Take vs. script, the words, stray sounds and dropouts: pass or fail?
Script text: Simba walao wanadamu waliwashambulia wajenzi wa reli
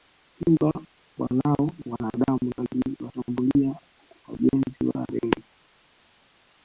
pass